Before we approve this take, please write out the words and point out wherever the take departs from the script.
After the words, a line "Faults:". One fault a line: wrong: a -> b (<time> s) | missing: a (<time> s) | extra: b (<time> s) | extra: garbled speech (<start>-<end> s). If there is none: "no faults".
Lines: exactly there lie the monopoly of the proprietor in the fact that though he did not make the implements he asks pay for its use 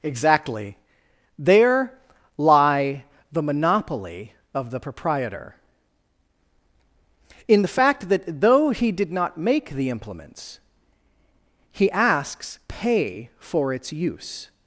exactly there lie the monopoly of the proprietor in the fact that though he did not make the implements he asks pay for its use
Faults:
no faults